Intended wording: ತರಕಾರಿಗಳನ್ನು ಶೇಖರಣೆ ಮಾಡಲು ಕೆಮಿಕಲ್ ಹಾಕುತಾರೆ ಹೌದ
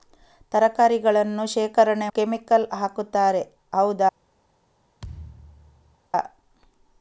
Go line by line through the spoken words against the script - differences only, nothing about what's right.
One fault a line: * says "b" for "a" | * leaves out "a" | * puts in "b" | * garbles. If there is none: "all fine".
* leaves out "ಮಾಡಲು"